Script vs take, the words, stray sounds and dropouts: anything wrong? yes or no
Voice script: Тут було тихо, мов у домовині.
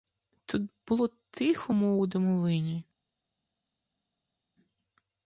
no